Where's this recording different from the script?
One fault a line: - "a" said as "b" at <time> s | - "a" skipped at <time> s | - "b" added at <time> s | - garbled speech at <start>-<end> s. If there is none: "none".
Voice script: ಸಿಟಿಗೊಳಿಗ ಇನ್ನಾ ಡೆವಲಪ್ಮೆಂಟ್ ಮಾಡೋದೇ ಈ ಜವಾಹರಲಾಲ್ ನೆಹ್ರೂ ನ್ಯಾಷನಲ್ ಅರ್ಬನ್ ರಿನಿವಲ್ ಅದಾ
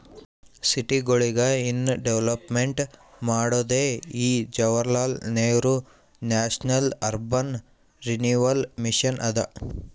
- "ಮಿಷನ್" added at 8.9 s